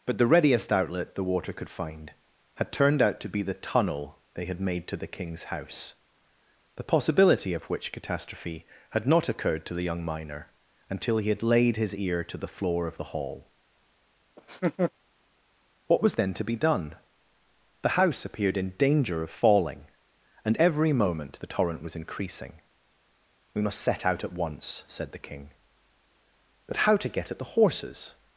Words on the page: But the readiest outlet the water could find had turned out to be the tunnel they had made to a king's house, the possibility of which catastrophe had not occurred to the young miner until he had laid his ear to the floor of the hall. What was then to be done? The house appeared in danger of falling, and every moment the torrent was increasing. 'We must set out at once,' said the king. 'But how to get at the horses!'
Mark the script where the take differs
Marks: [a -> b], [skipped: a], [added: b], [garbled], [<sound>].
But the readiest outlet the water could find had turned out to be the tunnel they had made to [a -> the] king's house, the possibility of which catastrophe had not occurred to the young miner until he had laid his ear to the floor of the hall. [laugh] What was then to be done? The house appeared in danger of falling, and every moment the torrent was increasing. 'We must set out at once,' said the king. 'But how to get at the horses!'